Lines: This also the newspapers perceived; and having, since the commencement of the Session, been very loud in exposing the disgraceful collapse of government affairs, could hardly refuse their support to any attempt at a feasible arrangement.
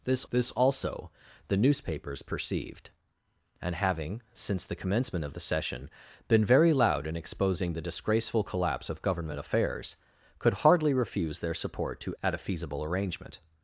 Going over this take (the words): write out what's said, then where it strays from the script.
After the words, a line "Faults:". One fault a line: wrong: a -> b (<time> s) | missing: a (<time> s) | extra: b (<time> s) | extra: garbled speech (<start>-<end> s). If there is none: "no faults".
This this also the newspapers perceived; and having, since the commencement of the Session, been very loud in exposing the disgraceful collapse of government affairs, could hardly refuse their support to at a feasible arrangement.
Faults:
extra: this (0.3 s)
missing: any attempt (12.1 s)